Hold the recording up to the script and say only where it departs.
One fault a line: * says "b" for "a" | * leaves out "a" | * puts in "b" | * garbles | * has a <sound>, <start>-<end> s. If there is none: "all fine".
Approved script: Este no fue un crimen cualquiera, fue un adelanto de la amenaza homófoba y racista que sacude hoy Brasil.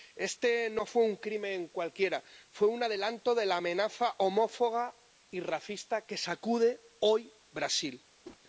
* has a whoosh, 8.2-8.4 s